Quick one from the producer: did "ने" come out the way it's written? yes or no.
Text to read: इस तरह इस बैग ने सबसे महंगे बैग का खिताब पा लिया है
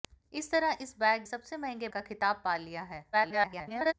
no